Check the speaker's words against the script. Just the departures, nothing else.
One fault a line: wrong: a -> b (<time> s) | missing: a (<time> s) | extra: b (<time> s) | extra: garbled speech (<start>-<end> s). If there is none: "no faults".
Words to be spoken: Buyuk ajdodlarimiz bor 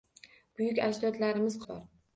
no faults